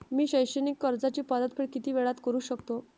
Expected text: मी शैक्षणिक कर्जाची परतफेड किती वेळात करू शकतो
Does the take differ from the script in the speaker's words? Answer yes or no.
no